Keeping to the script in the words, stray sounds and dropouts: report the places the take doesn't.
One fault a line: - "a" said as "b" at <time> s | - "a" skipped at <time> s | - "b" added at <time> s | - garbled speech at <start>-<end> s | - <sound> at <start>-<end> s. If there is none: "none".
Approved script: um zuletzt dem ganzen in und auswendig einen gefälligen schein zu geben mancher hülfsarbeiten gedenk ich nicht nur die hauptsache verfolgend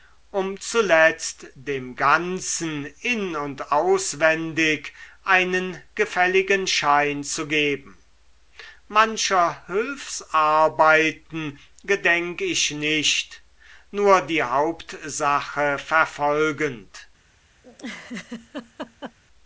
- laugh at 17.6-19.2 s